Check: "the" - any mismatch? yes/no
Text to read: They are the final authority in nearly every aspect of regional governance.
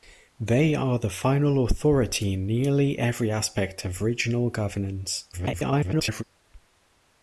no